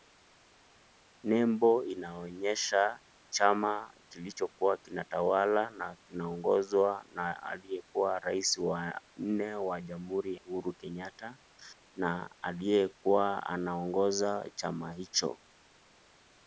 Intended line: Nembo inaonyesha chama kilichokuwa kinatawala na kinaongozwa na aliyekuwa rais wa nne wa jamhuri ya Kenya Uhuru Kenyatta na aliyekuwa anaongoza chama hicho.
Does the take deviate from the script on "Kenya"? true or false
true